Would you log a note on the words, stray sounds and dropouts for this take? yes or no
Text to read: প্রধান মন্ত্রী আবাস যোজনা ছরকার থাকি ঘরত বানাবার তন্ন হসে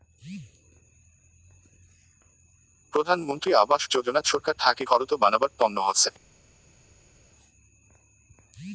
no